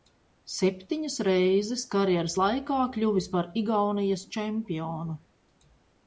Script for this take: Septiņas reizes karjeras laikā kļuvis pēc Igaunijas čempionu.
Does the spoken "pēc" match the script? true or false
false